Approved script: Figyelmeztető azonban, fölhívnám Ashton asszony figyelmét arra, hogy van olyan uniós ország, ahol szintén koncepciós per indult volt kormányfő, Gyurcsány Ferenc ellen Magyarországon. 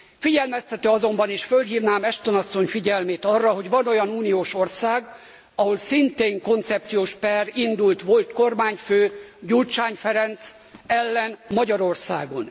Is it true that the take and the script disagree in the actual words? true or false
true